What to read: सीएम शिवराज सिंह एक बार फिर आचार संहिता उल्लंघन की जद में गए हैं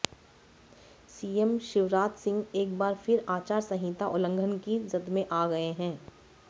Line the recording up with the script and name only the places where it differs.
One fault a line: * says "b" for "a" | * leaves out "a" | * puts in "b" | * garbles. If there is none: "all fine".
* puts in "आ"